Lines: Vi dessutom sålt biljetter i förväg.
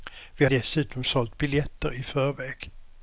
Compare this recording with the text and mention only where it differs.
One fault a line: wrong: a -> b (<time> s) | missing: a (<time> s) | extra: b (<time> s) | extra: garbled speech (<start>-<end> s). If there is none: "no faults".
no faults